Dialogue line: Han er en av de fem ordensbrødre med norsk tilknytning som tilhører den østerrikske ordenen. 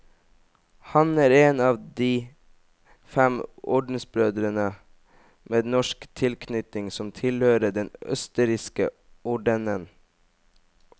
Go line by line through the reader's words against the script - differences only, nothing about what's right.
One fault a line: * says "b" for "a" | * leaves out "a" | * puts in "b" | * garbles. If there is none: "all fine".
all fine